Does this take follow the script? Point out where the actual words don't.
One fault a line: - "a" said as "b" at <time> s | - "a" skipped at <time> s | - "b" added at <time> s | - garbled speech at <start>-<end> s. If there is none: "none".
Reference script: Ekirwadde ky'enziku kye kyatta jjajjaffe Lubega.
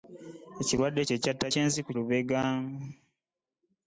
- "ky'enziku" skipped at 1.0 s
- "jjajjaffe" said as "ky'enziku" at 1.5 s